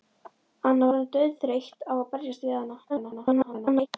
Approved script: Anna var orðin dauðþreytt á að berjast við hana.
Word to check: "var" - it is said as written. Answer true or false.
false